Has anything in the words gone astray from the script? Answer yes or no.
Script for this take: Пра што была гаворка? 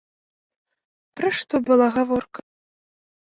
no